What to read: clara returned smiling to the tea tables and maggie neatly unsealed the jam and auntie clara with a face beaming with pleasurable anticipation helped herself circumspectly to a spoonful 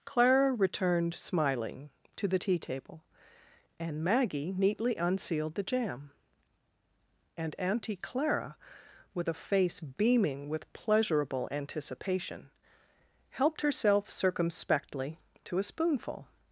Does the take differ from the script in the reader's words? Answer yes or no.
yes